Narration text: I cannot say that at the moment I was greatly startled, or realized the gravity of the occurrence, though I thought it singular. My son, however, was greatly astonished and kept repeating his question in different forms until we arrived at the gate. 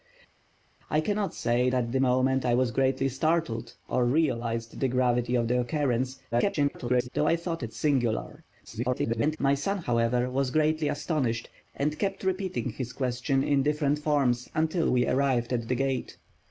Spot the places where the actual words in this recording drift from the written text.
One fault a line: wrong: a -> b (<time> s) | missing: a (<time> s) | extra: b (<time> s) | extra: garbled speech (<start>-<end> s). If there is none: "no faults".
missing: that (1.7 s)
extra: garbled speech (6.3-7.1 s)
extra: garbled speech (8.6-9.4 s)